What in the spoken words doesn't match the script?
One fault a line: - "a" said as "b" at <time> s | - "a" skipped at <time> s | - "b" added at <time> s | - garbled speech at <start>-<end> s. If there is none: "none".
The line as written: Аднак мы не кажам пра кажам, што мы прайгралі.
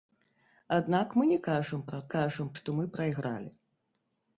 none